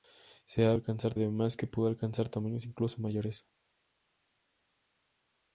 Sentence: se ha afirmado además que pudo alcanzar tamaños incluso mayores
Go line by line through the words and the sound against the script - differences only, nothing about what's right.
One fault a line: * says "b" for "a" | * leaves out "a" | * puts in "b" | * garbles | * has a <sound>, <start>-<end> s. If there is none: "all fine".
* says "alcanzar" for "afirmado"